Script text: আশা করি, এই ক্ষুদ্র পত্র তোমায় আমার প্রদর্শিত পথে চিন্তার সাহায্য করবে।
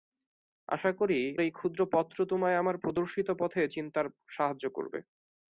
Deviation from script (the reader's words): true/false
false